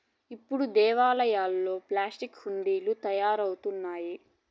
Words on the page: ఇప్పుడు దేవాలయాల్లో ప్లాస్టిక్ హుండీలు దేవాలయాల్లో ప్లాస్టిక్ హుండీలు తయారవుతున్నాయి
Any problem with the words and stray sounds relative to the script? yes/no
yes